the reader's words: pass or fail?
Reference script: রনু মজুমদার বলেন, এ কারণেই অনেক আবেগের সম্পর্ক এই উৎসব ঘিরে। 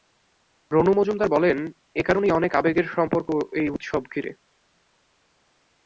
pass